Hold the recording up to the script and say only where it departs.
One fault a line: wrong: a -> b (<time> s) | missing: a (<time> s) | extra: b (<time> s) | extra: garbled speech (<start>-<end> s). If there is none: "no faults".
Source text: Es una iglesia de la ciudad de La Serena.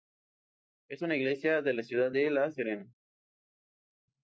no faults